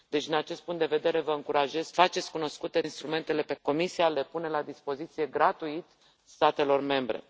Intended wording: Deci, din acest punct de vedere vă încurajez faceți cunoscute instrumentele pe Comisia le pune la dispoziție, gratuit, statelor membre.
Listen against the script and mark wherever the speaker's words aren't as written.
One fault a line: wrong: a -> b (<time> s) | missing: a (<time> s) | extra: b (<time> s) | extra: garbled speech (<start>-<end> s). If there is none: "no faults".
no faults